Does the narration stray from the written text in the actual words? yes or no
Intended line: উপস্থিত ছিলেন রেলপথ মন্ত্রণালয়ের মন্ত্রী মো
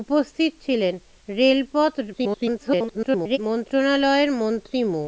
yes